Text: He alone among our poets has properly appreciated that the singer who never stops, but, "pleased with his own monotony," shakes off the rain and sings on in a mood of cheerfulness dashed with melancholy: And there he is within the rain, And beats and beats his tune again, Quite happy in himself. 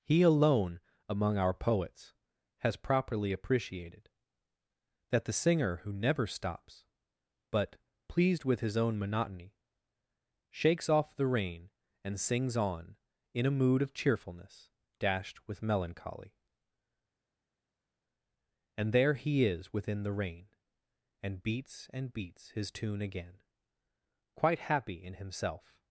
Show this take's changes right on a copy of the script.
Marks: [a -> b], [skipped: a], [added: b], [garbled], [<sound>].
He alone among our poets has properly appreciated that the singer who never stops, but, "pleased with his own monotony," shakes off the rain and sings on in a mood of cheerfulness dashed with melancholy: And there he is within the rain, And beats and beats his tune again, Quite happy in himself.